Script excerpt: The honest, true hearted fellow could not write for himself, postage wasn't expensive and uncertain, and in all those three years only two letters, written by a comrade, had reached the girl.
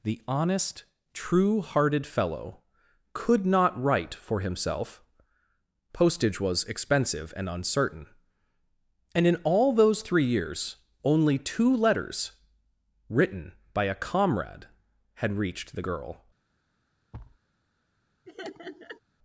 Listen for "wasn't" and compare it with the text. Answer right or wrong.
wrong